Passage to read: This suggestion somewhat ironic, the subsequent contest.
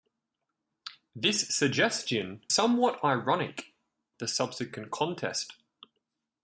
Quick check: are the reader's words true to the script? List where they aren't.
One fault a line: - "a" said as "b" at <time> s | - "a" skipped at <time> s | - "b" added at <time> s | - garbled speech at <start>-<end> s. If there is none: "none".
none